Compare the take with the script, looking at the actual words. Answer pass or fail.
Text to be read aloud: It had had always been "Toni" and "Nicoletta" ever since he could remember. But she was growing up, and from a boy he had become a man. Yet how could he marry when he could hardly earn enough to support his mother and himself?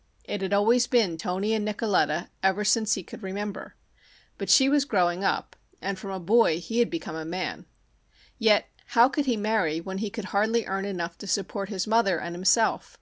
fail